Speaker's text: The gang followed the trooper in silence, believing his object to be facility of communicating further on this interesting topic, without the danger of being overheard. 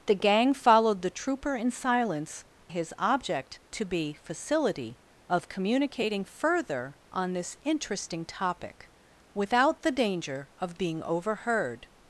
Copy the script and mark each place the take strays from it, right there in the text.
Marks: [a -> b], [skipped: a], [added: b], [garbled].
The gang followed the trooper in silence, [skipped: believing] his object to be facility of communicating further on this interesting topic, without the danger of being overheard.